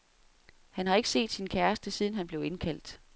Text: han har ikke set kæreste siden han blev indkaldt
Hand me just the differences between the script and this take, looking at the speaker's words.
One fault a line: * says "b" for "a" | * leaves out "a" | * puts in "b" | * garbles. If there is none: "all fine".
* puts in "sin"